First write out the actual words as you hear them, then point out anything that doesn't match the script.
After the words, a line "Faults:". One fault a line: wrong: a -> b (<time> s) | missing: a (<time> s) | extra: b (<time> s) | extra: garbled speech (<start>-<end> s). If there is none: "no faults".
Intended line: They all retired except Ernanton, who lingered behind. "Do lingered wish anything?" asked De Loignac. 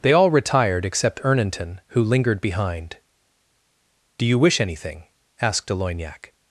They all retired except Ernanton, who lingered behind. "Do you wish anything?" asked De Loignac.
Faults:
wrong: lingered -> you (4.2 s)